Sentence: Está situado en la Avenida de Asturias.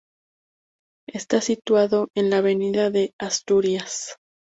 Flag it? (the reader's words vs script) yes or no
no